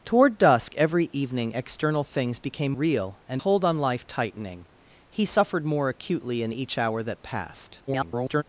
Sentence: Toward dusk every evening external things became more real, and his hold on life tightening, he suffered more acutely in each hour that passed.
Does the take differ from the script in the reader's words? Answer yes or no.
yes